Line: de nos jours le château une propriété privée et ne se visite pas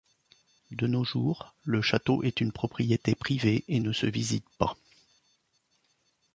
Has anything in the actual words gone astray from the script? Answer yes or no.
yes